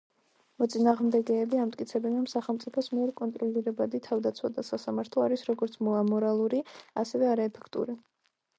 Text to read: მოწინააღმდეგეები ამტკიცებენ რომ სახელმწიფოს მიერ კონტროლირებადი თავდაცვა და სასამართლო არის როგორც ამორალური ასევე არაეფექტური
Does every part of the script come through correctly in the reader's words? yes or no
yes